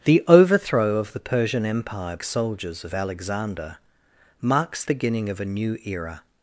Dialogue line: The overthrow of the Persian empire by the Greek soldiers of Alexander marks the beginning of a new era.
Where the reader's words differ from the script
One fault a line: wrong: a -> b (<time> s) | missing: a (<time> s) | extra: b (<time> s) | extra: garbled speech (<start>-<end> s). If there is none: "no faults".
missing: by the Greek (2.2 s)
missing: the (4.8 s)